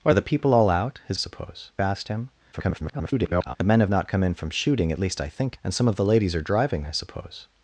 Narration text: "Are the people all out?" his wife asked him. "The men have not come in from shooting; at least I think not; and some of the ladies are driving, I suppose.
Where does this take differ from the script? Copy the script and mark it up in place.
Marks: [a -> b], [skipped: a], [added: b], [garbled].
"Are the people all out?" his [wife -> suppose] asked him. [garbled] "The men have not come in from shooting; at least I think [skipped: not;] and some of the ladies are driving, I suppose.